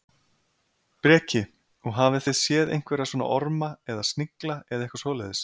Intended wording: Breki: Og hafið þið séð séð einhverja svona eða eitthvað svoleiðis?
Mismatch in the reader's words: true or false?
true